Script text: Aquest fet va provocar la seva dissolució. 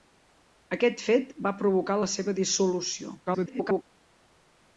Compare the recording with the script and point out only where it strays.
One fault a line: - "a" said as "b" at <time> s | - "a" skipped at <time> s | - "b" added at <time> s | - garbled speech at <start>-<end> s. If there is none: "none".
- garbled speech at 3.3-3.8 s